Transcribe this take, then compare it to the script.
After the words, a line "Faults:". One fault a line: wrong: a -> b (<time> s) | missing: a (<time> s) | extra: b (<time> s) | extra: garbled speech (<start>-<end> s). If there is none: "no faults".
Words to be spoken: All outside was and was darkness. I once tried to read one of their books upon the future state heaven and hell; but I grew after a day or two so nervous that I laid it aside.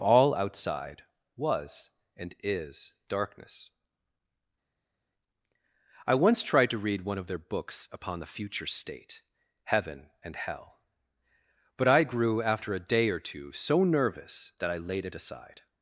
All outside was and is darkness. I once tried to read one of their books upon the future state heaven and hell; but I grew after a day or two so nervous that I laid it aside.
Faults:
wrong: was -> is (2.4 s)